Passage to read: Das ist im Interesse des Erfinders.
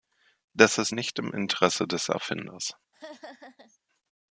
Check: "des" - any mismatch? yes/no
no